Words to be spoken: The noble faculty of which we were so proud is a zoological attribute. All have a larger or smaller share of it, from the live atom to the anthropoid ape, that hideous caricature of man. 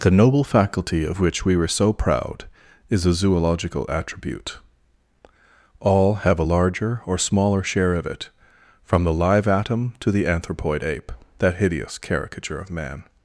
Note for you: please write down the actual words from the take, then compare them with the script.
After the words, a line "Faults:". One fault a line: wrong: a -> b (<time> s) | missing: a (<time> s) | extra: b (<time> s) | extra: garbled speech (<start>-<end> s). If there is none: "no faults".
The noble faculty of which we were so proud is a zoological attribute. All have a larger or smaller share of it, from the live atom to the anthropoid ape, that hideous caricature of man.
Faults:
no faults